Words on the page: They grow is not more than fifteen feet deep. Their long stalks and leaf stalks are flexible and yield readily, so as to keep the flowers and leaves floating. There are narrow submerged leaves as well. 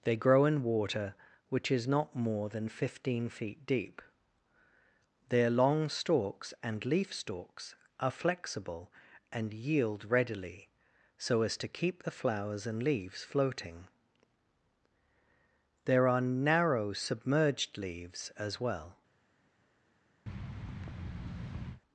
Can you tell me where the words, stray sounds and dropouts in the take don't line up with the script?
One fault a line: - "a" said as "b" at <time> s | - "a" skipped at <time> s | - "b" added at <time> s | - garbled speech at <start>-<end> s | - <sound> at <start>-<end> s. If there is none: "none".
- "in water which" added at 0.5 s
- thud at 20.3-21.8 s